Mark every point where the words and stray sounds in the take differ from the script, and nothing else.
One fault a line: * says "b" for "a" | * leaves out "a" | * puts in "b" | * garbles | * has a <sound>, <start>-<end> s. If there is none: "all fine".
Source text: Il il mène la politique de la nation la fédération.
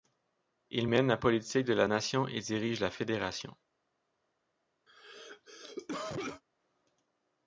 * leaves out "il"
* puts in "et dirige"
* has a cough, 4.9-6.4 s